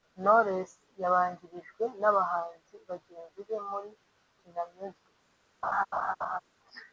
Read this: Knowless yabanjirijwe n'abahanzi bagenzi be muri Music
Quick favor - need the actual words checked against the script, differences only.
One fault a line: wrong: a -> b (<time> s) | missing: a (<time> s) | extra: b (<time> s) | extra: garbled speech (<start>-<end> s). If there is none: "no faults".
extra: Kina (4.4 s)